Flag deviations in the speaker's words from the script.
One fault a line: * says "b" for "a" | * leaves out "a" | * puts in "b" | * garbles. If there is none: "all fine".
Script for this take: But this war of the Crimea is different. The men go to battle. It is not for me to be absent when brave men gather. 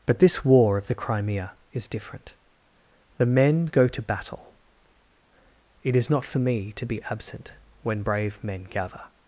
all fine